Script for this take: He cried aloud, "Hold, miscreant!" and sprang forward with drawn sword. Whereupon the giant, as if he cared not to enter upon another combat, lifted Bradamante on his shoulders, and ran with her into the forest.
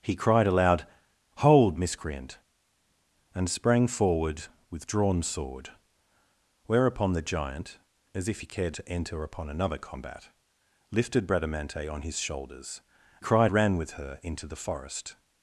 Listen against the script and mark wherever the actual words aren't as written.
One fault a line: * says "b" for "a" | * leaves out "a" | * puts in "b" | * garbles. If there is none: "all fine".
* leaves out "not"
* says "cried" for "and"